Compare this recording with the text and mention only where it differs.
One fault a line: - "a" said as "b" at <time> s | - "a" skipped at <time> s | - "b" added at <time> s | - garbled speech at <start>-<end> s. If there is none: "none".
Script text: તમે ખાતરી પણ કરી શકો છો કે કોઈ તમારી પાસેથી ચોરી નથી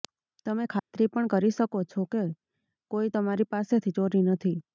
none